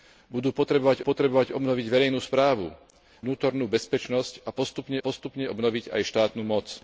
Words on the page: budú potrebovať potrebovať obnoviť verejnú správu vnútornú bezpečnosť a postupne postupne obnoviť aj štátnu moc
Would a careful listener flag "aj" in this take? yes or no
no